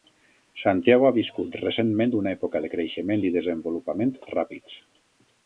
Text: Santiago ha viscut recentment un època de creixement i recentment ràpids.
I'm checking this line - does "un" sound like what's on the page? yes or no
no